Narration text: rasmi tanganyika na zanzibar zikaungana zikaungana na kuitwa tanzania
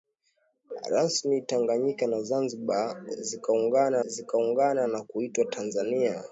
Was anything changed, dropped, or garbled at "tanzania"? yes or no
no